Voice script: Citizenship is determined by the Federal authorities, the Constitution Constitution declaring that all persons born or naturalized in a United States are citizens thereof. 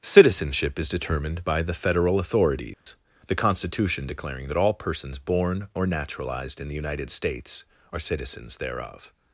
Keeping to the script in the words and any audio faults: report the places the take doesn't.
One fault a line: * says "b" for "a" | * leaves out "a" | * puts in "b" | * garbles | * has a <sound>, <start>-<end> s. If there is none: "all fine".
* has a dropout, 2.7-2.9 s
* leaves out "Constitution"
* says "the" for "a"